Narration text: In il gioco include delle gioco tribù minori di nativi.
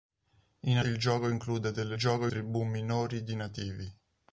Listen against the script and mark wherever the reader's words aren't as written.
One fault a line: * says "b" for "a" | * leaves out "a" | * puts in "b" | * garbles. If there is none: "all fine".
all fine